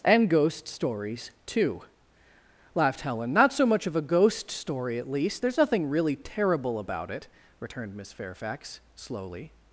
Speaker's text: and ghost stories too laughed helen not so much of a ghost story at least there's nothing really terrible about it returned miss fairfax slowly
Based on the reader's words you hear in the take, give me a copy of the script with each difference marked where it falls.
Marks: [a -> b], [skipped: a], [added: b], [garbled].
and ghost stories too laughed helen not so much of a ghost story at least there's nothing really terrible about it returned miss fairfax slowly